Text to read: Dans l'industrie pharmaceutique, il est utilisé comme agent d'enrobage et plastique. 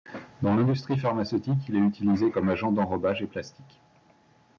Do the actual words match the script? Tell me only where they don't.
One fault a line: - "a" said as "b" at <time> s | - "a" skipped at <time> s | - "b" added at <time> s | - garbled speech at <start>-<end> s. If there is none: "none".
none